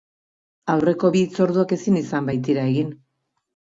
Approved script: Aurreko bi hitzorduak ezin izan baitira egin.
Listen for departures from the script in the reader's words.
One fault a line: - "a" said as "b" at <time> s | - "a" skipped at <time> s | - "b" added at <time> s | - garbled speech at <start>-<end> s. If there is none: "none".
none